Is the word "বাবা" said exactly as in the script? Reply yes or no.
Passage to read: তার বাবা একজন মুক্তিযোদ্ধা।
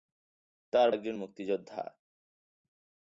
no